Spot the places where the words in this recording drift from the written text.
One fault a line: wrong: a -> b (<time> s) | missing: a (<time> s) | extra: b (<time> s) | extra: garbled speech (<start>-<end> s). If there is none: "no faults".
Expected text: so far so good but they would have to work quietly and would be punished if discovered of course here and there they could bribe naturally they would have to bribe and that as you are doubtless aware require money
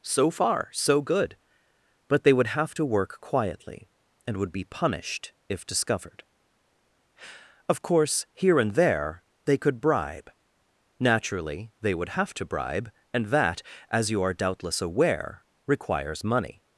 wrong: require -> requires (15.7 s)